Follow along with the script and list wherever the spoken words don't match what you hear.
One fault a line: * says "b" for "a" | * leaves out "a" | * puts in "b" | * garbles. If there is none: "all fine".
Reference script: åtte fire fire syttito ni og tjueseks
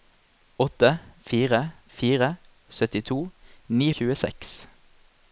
all fine